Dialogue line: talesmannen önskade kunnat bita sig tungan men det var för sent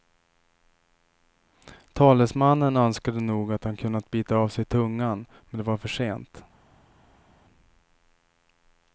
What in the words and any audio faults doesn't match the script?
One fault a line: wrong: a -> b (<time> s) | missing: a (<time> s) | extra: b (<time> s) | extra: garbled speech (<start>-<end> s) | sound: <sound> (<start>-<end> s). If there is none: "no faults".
extra: nog att han (3.2 s)
extra: av (4.3 s)